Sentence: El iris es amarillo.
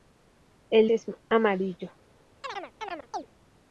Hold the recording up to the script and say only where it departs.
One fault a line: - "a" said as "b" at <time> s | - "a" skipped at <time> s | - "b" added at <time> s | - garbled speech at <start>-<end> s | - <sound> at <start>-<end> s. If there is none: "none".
- "iris" skipped at 0.9 s
- chirp at 2.4-3.3 s